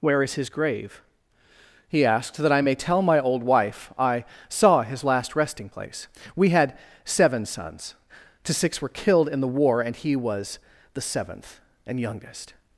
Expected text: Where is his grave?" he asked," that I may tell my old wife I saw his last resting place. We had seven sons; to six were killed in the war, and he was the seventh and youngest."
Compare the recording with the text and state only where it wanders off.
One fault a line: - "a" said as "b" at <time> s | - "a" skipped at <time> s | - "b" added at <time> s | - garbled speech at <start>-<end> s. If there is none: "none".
none